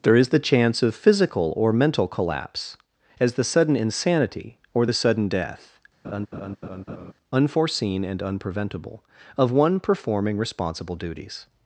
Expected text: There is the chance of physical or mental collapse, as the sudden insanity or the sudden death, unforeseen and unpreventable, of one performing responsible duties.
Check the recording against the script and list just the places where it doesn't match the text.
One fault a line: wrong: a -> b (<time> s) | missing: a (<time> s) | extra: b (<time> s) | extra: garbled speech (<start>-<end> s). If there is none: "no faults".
no faults